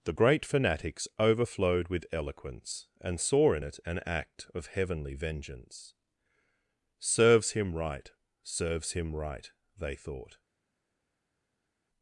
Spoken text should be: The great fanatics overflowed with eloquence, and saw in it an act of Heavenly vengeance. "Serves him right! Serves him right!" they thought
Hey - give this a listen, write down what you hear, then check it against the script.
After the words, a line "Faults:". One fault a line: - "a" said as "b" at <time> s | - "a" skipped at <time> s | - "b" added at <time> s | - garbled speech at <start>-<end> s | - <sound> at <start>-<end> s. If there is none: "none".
The great fanatics overflowed with eloquence, and saw in it an act of Heavenly vengeance. "Serves him right! Serves him right!" they thought
Faults:
none